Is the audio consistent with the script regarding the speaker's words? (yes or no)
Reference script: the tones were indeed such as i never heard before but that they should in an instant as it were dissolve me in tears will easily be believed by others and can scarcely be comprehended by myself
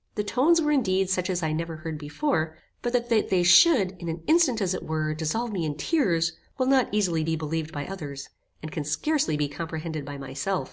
no